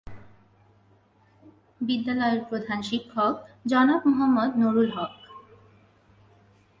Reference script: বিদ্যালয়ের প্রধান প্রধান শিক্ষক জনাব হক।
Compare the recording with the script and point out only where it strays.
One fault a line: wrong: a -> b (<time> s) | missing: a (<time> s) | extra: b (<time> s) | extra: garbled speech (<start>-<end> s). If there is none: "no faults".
missing: প্রধান (2.8 s)
extra: মোহাম্মদ নুরুল (4.1 s)